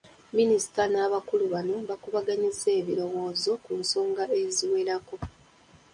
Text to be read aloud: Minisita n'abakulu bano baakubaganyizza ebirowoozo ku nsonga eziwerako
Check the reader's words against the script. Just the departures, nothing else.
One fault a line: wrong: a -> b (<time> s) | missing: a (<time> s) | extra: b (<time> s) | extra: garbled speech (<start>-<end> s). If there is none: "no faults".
no faults